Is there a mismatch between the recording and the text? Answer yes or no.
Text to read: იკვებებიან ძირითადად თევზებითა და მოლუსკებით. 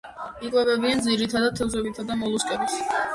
no